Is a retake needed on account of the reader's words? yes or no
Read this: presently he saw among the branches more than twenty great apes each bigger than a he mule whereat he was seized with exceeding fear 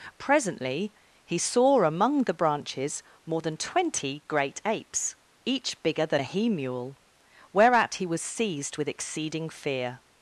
no